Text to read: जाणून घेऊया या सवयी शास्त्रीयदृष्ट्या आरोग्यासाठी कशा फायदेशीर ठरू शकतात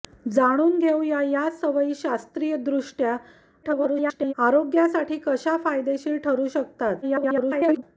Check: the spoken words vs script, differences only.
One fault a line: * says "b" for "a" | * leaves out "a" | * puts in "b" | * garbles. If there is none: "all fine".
* garbles
* garbles